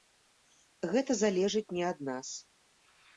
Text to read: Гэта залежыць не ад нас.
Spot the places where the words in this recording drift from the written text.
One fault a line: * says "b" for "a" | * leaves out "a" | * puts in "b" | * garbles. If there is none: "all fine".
all fine